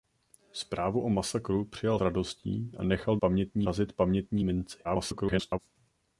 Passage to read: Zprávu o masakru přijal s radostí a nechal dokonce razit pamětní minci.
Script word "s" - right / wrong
wrong